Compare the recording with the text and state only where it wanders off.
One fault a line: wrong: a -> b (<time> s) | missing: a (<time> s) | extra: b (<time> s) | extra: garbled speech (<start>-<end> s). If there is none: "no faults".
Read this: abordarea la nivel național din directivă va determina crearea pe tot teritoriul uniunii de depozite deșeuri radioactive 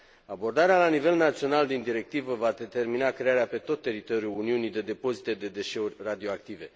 extra: de (5.3 s)